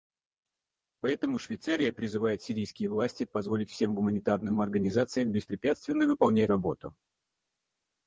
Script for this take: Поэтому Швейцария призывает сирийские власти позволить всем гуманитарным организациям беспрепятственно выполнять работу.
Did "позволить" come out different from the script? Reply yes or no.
no